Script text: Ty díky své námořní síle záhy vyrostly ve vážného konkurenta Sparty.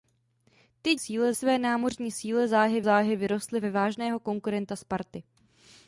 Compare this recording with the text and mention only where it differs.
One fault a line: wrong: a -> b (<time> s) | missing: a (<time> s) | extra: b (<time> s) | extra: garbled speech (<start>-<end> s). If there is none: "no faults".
wrong: díky -> síle (1.0 s)
extra: záhy (2.8 s)